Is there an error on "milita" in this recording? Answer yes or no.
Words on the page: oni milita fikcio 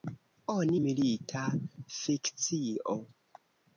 no